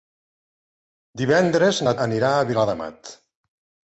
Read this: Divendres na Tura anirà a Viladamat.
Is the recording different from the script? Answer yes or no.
yes